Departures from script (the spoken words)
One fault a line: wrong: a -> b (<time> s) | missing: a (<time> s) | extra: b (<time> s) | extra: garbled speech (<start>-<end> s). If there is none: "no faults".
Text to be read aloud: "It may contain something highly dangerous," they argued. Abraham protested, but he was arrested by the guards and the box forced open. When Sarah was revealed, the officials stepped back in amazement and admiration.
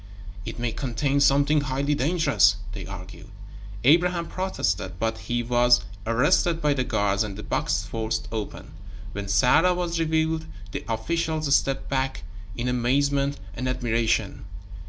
no faults